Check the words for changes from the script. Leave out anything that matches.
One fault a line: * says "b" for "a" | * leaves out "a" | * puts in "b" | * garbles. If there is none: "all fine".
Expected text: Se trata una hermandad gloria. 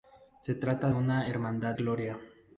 all fine